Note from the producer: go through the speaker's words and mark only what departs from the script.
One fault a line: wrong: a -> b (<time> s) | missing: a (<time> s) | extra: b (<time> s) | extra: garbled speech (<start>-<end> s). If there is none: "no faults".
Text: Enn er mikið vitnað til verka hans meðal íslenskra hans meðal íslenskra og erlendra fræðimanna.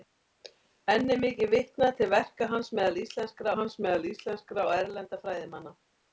no faults